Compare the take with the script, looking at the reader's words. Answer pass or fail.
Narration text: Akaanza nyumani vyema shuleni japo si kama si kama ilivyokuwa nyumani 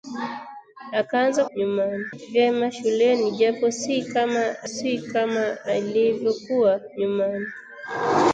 pass